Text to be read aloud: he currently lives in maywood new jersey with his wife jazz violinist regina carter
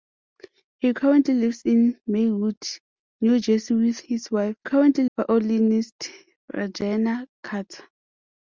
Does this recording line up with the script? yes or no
no